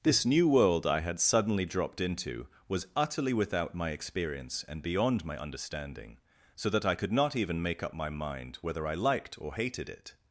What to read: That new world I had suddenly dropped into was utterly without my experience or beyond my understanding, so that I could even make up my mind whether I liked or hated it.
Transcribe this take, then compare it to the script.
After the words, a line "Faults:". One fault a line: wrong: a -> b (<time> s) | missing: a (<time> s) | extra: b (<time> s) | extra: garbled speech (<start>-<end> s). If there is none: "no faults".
This new world I had suddenly dropped into was utterly without my experience and beyond my understanding, so that I could not even make up my mind whether I liked or hated it.
Faults:
wrong: That -> This (0.0 s)
wrong: or -> and (4.7 s)
extra: not (7.1 s)